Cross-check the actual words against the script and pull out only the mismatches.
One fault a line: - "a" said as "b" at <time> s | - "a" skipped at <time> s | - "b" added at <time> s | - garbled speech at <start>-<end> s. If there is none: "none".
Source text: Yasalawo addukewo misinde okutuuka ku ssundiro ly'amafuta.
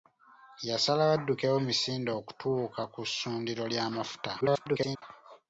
- garbled speech at 4.4-5.0 s